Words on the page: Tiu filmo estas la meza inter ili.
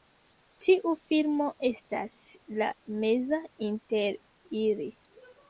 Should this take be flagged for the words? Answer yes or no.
no